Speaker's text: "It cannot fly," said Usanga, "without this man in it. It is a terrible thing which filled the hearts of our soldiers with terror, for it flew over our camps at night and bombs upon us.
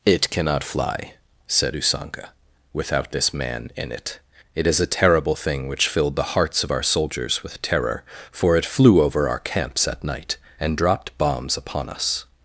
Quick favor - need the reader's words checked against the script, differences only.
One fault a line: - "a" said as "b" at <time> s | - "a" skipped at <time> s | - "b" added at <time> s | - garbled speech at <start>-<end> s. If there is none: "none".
- "dropped" added at 10.8 s